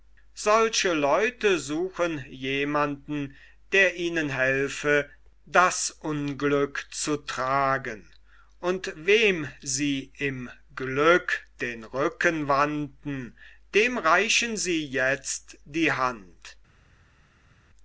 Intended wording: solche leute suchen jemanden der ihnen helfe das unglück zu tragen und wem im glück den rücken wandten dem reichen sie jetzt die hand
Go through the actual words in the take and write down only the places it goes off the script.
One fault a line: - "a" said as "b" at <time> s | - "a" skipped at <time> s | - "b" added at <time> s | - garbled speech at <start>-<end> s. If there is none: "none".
- "sie" added at 9.6 s